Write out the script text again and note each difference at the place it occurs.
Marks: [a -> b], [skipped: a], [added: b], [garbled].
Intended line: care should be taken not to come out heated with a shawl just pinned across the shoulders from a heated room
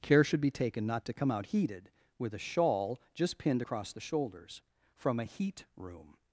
care should be taken not to come out heated with a shawl just pinned across the shoulders from a [heated -> heat] room